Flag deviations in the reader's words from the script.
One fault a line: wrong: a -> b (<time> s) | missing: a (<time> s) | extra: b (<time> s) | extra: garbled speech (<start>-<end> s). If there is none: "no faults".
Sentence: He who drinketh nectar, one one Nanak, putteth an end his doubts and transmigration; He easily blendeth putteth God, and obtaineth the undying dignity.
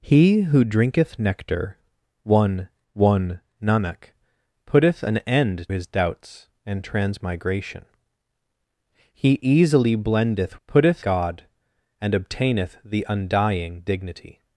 no faults